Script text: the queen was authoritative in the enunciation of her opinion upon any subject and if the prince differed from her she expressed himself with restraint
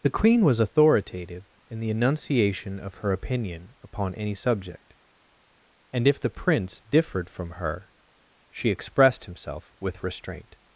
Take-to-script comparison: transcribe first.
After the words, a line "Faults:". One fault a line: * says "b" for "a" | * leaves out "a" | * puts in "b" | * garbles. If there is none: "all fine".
the queen was authoritative in the enunciation of her opinion upon any subject and if the prince differed from her she expressed himself with restraint
Faults:
all fine